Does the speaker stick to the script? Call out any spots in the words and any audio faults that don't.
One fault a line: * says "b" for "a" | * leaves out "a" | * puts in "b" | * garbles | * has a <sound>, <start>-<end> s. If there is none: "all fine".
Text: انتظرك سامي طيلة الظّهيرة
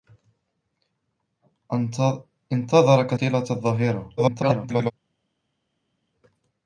* leaves out "سامي"
* garbles